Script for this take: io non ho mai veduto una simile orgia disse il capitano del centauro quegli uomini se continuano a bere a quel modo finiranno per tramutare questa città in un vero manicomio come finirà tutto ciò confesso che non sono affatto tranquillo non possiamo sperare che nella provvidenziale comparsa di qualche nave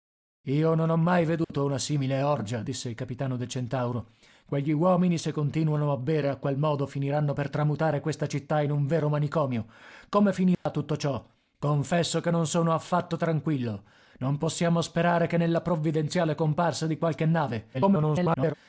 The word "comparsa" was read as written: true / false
true